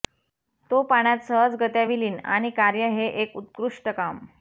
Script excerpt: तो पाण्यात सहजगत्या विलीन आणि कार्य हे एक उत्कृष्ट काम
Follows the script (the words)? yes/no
yes